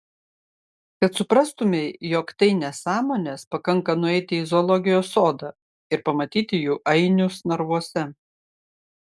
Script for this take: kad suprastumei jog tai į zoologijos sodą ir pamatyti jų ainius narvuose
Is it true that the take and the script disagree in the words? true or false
true